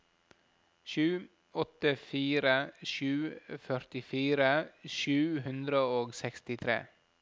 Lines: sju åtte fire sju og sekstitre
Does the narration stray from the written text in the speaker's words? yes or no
yes